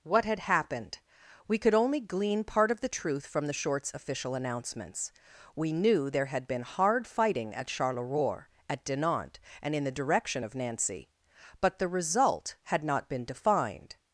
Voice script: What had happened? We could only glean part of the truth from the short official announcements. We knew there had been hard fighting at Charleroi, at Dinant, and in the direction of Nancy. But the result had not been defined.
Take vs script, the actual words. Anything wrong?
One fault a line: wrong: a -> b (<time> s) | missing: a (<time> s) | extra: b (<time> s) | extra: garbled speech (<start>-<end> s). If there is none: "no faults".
wrong: short -> shorts (3.5 s)